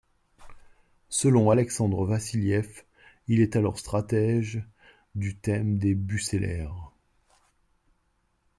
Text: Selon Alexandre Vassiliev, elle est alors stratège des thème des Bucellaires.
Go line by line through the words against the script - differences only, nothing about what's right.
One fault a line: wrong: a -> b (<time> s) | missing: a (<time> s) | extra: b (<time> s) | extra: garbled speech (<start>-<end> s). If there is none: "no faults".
wrong: elle -> il (3.3 s)
wrong: des -> du (5.2 s)